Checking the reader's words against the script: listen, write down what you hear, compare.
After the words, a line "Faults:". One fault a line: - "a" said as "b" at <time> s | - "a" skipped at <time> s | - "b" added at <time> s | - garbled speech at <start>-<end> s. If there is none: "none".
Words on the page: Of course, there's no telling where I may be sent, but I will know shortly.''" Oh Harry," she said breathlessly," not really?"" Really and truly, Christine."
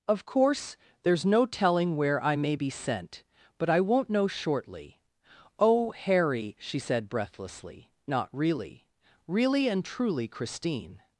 Of course, there's no telling where I may be sent, but I won't know shortly.''" Oh Harry," she said breathlessly," not really?"" Really and truly, Christine."
Faults:
- "will" said as "won't" at 3.8 s